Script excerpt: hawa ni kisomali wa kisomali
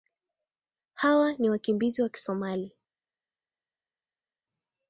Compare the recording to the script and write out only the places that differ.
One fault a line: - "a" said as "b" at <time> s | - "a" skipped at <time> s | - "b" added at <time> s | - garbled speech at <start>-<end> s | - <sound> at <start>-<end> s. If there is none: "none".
- "kisomali" said as "wakimbizi" at 1.5 s